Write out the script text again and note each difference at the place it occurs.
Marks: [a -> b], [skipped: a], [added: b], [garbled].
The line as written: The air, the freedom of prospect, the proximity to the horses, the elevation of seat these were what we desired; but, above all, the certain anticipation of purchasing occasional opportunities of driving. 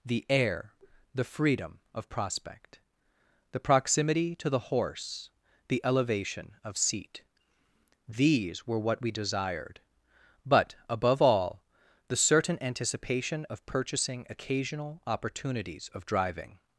The air, the freedom of prospect, the proximity to the [horses, -> horse] the elevation of seat these were what we desired; but, above all, the certain anticipation of purchasing occasional opportunities of driving.